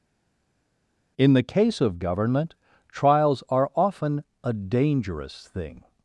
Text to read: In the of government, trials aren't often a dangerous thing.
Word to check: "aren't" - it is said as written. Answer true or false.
false